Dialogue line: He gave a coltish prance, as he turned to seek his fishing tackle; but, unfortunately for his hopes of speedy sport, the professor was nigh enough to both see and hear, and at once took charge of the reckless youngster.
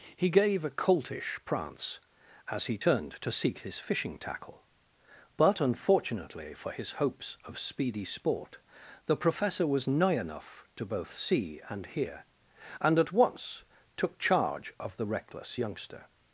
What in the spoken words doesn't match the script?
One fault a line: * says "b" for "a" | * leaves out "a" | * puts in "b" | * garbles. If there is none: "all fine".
all fine